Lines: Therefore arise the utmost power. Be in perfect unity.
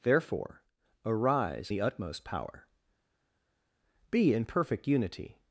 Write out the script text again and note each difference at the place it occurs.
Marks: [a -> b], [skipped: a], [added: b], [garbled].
Therefore arise the utmost power. Be in perfect unity.